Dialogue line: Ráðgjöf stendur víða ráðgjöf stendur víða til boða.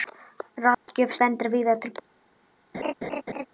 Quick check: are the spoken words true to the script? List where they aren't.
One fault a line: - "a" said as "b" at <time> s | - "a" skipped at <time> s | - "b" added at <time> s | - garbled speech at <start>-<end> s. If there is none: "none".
- "ráðgjöf stendur víða" skipped at 1.8 s